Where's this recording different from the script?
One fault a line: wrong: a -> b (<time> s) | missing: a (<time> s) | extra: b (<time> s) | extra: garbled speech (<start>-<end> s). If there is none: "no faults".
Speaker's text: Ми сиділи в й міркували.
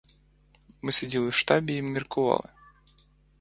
extra: штабі (1.3 s)